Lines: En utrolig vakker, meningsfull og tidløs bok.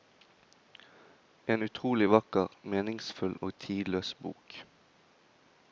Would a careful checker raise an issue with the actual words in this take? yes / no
no